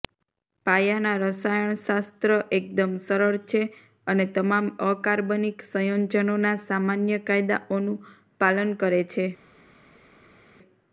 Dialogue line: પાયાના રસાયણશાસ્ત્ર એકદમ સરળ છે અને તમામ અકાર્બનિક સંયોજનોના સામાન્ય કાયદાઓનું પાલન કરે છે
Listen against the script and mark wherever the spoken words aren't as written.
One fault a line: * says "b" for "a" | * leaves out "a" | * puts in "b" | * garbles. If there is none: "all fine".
all fine